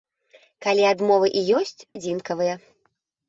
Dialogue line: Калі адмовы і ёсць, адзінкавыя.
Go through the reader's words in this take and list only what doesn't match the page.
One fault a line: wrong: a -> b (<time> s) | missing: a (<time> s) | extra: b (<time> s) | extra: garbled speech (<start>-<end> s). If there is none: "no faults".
no faults